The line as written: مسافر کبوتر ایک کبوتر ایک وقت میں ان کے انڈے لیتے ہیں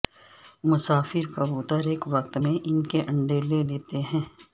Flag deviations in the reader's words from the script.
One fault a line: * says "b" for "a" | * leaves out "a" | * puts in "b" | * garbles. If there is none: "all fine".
* leaves out "کبوتر ایک"
* puts in "لے"